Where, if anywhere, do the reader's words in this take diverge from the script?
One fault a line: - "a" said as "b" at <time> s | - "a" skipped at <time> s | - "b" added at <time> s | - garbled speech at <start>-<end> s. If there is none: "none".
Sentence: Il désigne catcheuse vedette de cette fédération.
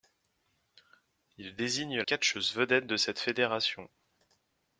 none